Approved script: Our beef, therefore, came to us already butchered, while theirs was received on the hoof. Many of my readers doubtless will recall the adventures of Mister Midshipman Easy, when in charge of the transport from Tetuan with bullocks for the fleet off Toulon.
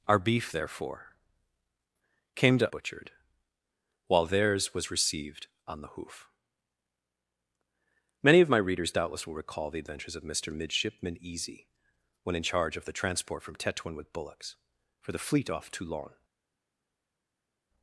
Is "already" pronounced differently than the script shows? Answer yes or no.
yes